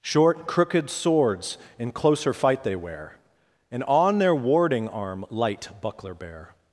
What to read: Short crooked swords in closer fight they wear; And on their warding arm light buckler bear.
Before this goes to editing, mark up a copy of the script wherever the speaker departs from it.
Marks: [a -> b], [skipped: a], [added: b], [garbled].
Short crooked swords in closer fight they wear; And on their warding arm light buckler bear.